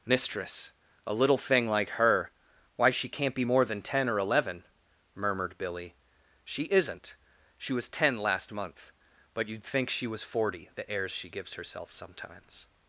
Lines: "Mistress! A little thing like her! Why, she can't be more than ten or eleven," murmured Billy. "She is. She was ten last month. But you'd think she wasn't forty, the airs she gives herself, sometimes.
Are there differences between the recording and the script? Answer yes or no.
yes